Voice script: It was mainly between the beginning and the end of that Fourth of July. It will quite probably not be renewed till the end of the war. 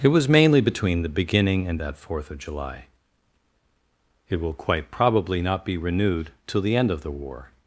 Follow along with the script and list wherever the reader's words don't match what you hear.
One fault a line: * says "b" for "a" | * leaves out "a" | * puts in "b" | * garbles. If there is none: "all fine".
* leaves out "the end of"